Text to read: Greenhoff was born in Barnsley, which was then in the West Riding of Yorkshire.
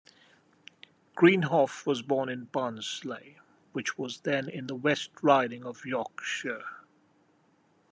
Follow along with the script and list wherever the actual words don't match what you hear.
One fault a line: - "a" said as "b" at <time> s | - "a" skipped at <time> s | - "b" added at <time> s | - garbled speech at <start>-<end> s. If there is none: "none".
none